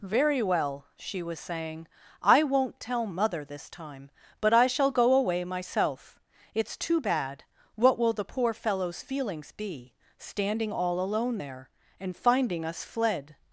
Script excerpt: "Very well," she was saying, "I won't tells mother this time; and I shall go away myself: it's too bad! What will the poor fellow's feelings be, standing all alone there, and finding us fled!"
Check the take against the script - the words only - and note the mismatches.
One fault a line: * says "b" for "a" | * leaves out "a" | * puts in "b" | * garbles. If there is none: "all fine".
* says "tell" for "tells"
* says "but" for "and"